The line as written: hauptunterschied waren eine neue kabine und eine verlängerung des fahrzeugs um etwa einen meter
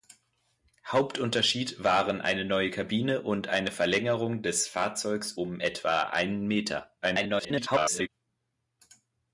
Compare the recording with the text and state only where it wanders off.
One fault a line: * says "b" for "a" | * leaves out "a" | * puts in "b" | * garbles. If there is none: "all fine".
* garbles